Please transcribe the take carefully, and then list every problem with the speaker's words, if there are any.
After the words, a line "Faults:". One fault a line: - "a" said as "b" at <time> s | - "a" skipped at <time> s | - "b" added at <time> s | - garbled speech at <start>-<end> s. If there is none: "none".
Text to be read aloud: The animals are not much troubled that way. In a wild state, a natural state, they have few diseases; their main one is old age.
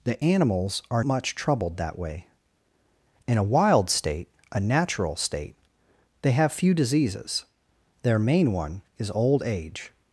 The animals are much troubled that way. In a wild state, a natural state, they have few diseases; their main one is old age.
Faults:
- "not" skipped at 1.0 s